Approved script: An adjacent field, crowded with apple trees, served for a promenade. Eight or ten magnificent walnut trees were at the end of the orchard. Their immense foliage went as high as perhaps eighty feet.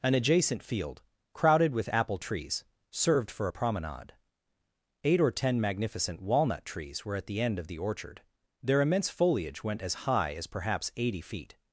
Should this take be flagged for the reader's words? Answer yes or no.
no